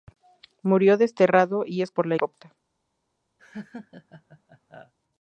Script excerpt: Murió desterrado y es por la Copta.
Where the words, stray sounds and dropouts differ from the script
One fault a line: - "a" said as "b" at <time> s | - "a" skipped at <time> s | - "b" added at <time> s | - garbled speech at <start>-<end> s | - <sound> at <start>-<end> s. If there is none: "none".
- laugh at 3.4-4.9 s